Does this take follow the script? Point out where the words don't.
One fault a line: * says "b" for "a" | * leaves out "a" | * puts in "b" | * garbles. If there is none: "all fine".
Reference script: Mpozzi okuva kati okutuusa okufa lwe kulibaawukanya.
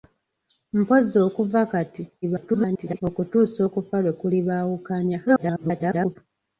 * garbles
* garbles